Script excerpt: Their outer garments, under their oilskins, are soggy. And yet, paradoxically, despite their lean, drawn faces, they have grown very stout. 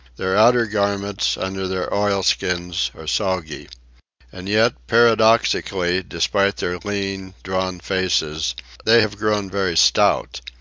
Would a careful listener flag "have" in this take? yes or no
no